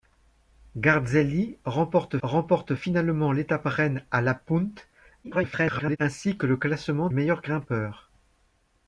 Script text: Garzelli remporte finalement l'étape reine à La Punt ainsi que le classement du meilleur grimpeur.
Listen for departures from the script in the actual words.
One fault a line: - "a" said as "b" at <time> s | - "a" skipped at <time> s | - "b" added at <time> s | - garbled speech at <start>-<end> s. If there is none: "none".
- "remporte" added at 2.2 s
- garbled speech at 5.2-6.0 s
- "du" skipped at 7.1 s